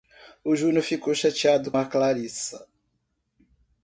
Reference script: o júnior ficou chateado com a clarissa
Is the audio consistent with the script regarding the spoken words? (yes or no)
no